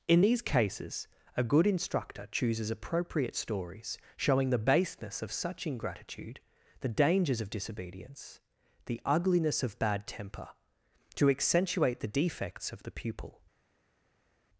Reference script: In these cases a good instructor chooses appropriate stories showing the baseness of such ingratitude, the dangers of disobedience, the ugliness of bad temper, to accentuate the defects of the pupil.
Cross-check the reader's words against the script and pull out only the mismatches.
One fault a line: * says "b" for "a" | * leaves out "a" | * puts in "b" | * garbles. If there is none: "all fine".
all fine